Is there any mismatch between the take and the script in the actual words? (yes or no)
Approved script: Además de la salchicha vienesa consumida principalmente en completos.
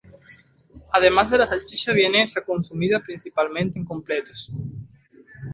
no